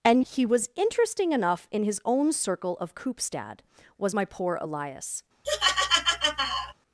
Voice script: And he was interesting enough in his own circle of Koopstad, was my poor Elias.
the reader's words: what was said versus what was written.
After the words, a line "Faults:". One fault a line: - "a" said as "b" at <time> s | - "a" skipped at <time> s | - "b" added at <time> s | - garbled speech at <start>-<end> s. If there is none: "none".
And he was interesting enough in his own circle of Koopstad, was my poor Elias.
Faults:
none